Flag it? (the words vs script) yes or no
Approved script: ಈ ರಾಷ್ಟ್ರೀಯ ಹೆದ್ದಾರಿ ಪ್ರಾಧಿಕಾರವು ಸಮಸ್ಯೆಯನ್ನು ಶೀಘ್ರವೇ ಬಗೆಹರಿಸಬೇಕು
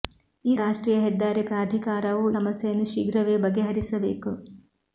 no